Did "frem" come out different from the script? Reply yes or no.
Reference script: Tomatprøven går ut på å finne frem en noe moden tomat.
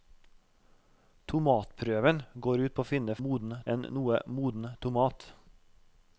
yes